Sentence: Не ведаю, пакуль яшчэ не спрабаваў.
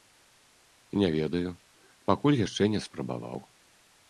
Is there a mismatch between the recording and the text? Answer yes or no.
no